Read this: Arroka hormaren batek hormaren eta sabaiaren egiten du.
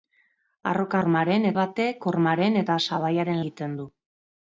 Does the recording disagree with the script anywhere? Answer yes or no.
no